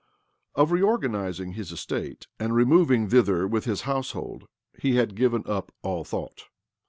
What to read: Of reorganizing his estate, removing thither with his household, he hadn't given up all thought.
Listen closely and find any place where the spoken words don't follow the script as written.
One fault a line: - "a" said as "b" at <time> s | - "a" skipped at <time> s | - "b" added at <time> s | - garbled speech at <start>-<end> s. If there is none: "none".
- "and" added at 2.4 s
- "hadn't" said as "had" at 5.0 s